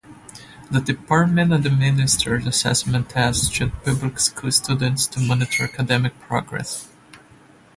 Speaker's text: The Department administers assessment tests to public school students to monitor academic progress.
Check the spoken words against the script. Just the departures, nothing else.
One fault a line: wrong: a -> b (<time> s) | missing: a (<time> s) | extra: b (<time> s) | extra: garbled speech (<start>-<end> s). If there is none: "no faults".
no faults